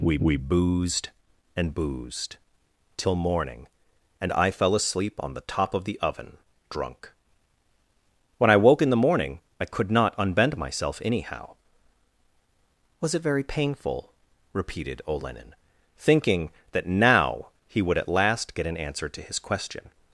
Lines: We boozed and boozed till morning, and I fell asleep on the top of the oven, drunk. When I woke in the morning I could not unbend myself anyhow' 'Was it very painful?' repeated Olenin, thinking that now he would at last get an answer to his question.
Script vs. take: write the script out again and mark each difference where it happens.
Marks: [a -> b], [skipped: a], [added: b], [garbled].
We [added: we] boozed and boozed till morning, and I fell asleep on the top of the oven, drunk. When I woke in the morning I could not unbend myself anyhow' 'Was it very painful?' repeated Olenin, thinking that now he would at last get an answer to his question.